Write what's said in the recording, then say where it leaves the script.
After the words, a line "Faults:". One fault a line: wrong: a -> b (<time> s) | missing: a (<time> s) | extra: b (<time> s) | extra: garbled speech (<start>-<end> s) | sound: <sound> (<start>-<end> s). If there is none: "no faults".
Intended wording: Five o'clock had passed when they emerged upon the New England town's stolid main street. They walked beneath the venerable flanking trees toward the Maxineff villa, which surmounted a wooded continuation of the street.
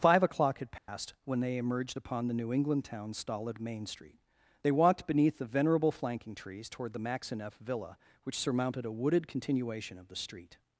Five o'clock had passed when they emerged upon the New England town's stolid main street. They walked beneath the venerable flanking trees toward the Maxineff villa, which surmounted a wooded continuation of the street.
Faults:
sound: dropout (0.8-0.9 s)